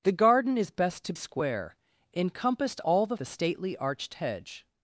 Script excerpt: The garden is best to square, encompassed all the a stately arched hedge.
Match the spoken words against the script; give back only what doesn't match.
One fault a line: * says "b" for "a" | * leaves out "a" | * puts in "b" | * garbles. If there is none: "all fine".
all fine